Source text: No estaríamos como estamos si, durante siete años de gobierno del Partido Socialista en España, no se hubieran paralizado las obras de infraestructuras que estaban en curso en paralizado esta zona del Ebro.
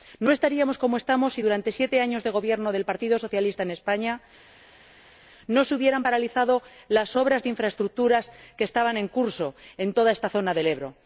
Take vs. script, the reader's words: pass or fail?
fail